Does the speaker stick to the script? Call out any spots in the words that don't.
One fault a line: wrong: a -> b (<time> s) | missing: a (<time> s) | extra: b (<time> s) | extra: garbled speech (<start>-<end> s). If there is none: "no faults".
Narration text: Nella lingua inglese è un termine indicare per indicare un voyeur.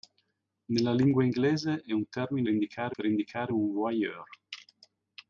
no faults